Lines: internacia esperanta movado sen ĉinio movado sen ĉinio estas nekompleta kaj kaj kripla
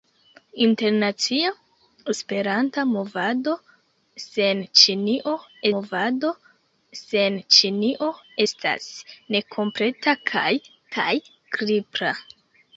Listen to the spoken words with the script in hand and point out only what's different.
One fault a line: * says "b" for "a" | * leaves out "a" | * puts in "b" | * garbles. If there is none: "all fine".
all fine